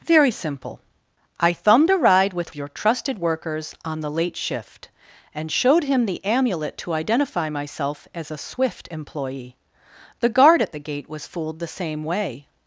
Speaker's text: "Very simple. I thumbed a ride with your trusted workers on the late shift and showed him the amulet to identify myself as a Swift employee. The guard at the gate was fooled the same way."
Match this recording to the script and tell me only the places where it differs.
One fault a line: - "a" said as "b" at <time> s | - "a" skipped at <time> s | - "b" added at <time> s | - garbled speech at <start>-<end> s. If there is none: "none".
none